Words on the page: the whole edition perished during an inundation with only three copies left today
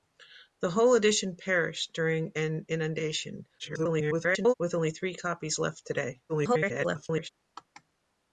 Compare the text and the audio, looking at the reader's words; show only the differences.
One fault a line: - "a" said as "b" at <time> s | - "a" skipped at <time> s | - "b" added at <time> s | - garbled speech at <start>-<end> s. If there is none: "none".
- garbled speech at 3.6-4.5 s
- garbled speech at 6.3-7.3 s